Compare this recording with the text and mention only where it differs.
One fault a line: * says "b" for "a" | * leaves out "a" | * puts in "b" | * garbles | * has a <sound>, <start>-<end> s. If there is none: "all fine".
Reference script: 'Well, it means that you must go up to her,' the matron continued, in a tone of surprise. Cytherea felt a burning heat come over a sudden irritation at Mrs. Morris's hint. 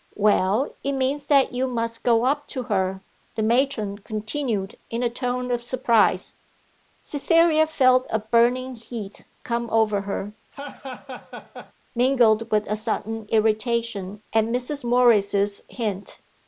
* puts in "her mingled with"
* has a laugh, 10.5-11.7 s